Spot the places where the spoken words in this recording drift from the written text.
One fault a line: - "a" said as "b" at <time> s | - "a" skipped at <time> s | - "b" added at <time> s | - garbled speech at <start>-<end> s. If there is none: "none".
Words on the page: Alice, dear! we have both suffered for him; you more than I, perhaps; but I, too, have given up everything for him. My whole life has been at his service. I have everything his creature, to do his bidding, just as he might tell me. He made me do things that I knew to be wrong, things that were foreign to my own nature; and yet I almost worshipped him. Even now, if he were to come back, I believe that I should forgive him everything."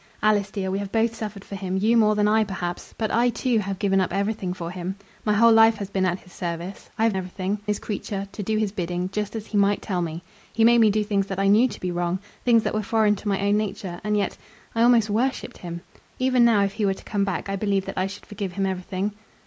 none